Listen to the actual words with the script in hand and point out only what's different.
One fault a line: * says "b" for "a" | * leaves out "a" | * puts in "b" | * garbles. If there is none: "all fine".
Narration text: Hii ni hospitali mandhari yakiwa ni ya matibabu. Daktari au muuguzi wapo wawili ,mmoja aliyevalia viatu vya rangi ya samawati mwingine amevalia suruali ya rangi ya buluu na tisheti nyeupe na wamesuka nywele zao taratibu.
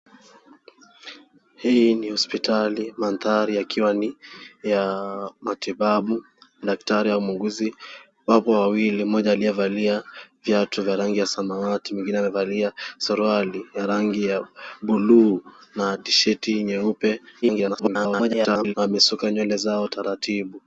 * garbles